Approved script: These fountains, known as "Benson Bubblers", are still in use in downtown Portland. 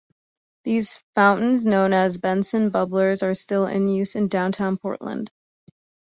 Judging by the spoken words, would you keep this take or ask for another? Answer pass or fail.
pass